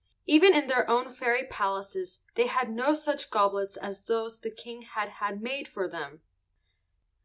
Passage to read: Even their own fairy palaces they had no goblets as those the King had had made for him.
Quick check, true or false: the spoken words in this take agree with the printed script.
false